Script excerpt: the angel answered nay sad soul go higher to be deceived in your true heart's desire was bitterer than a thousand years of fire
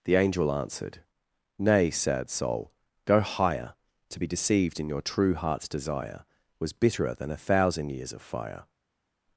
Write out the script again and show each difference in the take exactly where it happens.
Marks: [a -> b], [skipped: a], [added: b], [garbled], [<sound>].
the angel answered nay sad soul go higher to be deceived in your true heart's desire was bitterer than a thousand years of fire